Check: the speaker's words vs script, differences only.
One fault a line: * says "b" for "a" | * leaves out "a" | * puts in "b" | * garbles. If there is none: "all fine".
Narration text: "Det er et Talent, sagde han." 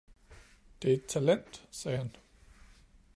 all fine